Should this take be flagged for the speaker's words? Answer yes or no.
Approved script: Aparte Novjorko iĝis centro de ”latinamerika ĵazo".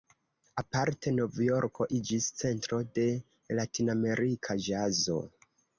no